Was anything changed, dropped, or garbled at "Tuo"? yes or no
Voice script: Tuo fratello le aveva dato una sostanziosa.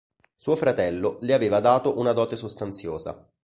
yes